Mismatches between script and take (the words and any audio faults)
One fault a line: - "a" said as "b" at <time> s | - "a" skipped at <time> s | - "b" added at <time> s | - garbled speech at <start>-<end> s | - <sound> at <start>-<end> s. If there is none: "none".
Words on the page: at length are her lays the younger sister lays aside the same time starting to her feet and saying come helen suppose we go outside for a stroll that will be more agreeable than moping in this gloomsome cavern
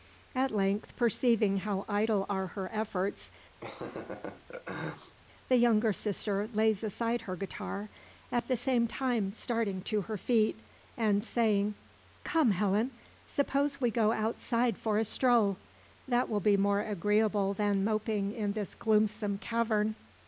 - "perceiving how idle" added at 0.9 s
- "lays" said as "efforts" at 2.7 s
- laugh at 3.6-5.2 s
- "her guitar at" added at 7.2 s